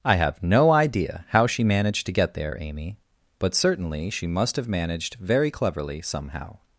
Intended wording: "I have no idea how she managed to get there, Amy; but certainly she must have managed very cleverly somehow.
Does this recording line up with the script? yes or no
yes